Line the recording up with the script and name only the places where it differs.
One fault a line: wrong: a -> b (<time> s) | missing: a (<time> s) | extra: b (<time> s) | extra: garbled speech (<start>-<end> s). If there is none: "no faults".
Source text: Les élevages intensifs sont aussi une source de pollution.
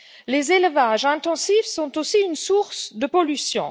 no faults